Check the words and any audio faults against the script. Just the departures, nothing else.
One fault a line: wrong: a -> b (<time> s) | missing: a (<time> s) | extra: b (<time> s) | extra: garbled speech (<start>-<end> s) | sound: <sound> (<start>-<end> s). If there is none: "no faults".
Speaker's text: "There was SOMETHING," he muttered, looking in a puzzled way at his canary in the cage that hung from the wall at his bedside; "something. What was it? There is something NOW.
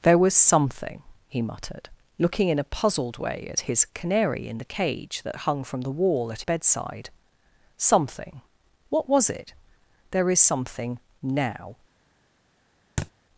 missing: his (6.4 s)
sound: thud (13.0-13.1 s)